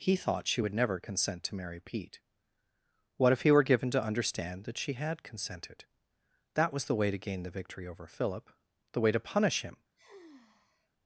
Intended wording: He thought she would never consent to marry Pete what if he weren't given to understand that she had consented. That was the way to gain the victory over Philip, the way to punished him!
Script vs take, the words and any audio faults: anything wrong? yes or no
yes